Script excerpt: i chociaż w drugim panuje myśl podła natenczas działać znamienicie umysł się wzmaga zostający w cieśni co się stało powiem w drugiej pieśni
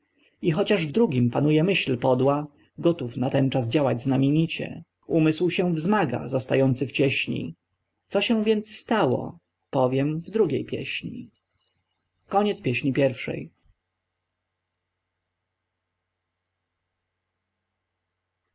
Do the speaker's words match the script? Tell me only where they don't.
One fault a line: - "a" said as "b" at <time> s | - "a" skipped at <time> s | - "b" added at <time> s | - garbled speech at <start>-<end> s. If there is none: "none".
- "gotów" added at 2.8 s
- "więc" added at 8.4 s